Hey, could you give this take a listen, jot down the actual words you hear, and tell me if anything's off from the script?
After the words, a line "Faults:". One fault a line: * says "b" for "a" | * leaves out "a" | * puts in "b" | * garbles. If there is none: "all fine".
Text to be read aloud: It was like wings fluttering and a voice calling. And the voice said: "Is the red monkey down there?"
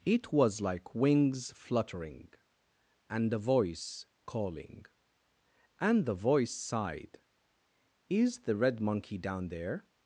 It was like wings fluttering and a voice calling. And the voice sighed: "Is the red monkey down there?"
Faults:
* says "sighed" for "said"